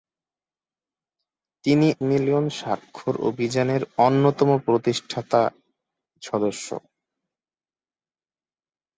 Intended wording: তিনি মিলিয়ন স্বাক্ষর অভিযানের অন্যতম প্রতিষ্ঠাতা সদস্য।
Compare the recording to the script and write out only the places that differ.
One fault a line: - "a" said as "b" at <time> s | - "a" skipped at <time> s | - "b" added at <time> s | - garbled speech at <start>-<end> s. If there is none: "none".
none